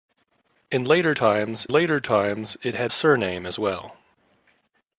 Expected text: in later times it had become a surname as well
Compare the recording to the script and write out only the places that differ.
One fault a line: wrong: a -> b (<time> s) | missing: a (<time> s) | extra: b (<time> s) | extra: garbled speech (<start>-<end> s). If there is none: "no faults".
extra: later times (1.7 s)
missing: become (2.9 s)